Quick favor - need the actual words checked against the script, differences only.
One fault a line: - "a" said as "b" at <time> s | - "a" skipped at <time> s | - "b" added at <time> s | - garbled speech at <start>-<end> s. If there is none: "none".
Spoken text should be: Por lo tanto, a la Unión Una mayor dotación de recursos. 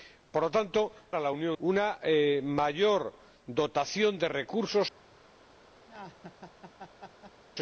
none